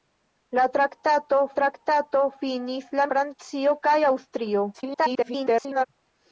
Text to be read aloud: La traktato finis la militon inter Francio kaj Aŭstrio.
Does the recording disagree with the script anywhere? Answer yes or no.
yes